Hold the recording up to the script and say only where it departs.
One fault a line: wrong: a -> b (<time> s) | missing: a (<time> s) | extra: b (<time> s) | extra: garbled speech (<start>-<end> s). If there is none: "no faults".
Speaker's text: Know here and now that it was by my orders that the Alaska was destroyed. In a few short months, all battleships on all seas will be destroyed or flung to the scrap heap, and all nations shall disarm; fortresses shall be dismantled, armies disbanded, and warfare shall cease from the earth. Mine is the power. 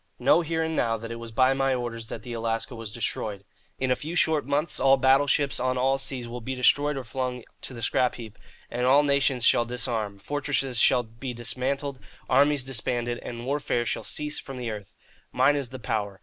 no faults